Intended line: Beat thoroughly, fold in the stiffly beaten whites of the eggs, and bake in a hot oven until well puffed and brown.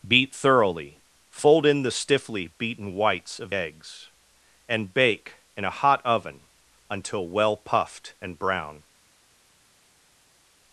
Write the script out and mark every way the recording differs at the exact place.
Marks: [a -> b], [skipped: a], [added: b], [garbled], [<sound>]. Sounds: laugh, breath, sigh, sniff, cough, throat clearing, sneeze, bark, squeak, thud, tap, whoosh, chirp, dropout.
Beat thoroughly, fold in the stiffly beaten whites of [skipped: the] eggs, and bake in a hot oven until well puffed and brown.